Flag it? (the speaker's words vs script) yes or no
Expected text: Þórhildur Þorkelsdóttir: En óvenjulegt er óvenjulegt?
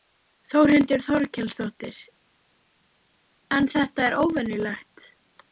yes